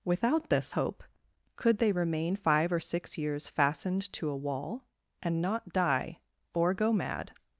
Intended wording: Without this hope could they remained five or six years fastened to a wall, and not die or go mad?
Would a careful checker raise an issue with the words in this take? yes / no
yes